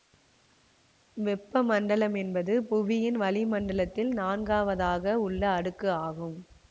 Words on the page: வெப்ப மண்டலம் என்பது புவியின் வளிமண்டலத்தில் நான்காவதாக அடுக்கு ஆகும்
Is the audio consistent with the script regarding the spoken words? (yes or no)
no